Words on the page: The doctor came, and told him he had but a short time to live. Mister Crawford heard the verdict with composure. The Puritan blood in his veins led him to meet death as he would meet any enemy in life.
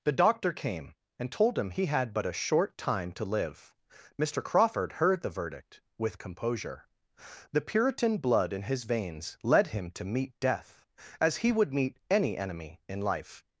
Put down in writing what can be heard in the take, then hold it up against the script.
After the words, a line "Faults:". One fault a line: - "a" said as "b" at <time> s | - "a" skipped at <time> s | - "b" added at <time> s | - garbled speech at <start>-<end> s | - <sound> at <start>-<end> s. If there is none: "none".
The doctor came, and told him he had but a short time to live. Mister Crawford heard the verdict with composure. The Puritan blood in his veins led him to meet death as he would meet any enemy in life.
Faults:
none